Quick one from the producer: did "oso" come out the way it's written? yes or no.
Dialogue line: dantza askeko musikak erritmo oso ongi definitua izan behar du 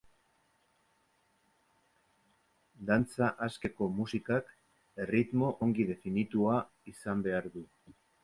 no